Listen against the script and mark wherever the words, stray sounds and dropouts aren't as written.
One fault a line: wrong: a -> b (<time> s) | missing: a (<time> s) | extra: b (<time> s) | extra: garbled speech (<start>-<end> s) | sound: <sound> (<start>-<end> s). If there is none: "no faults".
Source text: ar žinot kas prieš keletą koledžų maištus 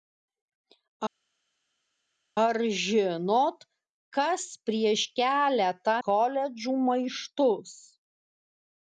no faults